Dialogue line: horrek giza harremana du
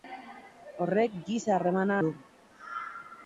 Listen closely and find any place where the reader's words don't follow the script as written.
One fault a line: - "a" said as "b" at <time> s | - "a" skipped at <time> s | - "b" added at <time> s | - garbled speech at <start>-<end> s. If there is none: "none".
none